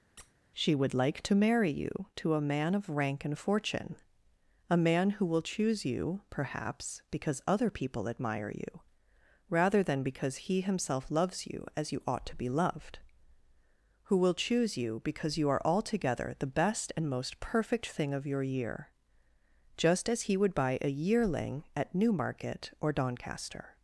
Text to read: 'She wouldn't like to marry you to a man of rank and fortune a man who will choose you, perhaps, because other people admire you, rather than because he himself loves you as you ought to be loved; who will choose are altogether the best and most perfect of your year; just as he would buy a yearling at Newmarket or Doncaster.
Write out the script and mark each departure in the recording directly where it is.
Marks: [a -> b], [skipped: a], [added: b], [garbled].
'She [wouldn't -> would] like to marry you to a man of rank and fortune a man who will choose you, perhaps, because other people admire you, rather than because he himself loves you as you ought to be loved; who will choose [added: you because you] are altogether the best and most perfect [added: thing] of your year; just as he would buy a yearling at Newmarket or Doncaster.